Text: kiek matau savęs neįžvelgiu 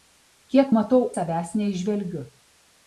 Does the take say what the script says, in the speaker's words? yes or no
yes